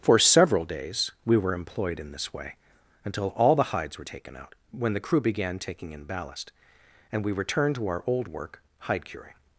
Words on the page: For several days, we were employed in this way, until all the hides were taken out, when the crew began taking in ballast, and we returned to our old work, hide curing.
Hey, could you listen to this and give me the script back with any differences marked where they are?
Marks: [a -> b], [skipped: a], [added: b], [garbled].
For several days, we were employed in this way, until all the hides were taken out, when the crew began taking in ballast, and we returned to our old work, hide curing.